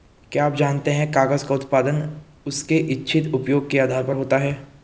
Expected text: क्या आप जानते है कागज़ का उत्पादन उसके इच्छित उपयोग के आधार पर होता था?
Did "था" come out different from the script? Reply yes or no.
yes